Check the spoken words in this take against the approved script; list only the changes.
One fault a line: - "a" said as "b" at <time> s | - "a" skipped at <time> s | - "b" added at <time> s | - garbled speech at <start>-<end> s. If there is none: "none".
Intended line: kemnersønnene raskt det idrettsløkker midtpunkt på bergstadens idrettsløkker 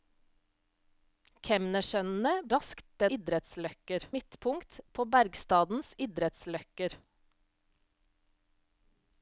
none